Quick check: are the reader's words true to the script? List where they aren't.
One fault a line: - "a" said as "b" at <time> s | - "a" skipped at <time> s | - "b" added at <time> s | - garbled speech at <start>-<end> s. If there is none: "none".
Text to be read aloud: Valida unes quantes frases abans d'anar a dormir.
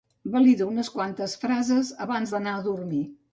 none